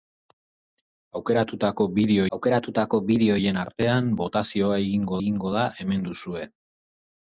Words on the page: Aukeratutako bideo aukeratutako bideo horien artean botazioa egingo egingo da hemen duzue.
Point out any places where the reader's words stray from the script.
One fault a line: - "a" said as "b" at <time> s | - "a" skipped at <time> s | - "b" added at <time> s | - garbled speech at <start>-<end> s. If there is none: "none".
none